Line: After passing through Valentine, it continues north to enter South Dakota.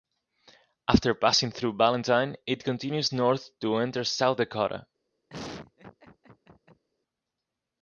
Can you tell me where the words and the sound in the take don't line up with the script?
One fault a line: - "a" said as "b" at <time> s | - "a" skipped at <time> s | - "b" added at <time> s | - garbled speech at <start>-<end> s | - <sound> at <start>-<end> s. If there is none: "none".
- laugh at 5.3-6.8 s